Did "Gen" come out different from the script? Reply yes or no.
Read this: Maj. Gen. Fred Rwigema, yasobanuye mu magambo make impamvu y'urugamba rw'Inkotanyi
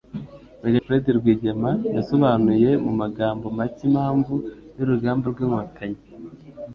yes